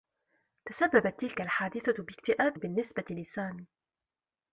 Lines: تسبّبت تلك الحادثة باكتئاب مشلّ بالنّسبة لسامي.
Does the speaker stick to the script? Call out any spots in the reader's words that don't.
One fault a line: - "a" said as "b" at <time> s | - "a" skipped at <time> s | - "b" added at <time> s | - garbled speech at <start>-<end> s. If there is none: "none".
- "مشلّ" skipped at 2.6 s